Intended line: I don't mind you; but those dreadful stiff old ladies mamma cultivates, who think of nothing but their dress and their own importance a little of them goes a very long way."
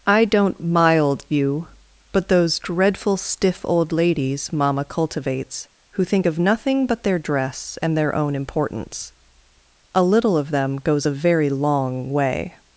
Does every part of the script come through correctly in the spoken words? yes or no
no